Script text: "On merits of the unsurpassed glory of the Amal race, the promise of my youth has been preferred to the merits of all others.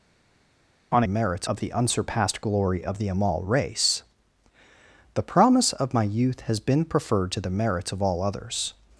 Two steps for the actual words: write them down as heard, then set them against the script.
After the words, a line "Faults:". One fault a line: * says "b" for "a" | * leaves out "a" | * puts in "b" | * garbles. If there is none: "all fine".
"On merits of the unsurpassed glory of the Amal race, the promise of my youth has been preferred to the merits of all others.
Faults:
all fine